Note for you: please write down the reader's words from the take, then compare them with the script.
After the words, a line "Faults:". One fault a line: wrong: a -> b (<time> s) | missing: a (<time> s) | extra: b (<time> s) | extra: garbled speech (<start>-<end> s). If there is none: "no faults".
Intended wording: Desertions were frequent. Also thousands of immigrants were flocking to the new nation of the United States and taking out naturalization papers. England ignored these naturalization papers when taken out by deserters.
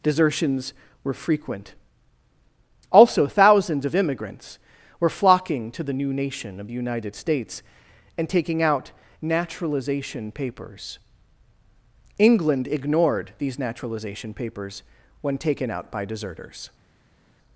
Desertions were frequent. Also thousands of immigrants were flocking to the new nation of the United States and taking out naturalization papers. England ignored these naturalization papers when taken out by deserters.
Faults:
no faults